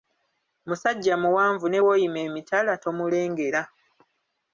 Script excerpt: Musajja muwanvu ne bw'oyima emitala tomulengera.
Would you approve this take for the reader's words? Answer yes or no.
yes